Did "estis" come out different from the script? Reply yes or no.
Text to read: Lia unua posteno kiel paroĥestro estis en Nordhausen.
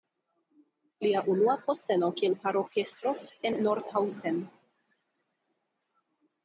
yes